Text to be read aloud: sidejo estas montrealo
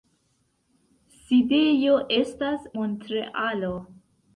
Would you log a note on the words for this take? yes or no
no